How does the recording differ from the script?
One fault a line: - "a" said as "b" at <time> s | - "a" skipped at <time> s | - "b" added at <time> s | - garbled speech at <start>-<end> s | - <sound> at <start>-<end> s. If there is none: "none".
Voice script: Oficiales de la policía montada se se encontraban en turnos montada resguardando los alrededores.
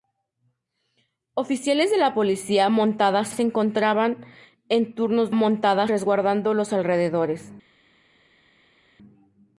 none